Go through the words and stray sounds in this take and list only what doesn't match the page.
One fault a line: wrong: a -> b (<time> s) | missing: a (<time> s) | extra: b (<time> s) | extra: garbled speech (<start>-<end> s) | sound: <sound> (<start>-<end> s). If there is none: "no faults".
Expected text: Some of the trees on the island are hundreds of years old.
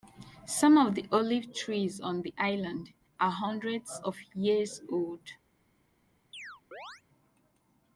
extra: olive (1.1 s)
sound: chirp (6.3-7.0 s)